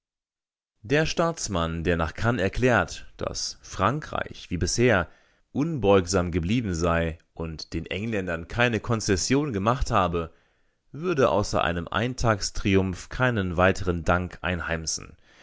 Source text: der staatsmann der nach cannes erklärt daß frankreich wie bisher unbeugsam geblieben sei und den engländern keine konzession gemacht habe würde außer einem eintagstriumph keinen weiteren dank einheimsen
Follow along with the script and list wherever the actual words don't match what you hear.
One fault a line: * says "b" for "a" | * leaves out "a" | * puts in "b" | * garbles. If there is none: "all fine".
all fine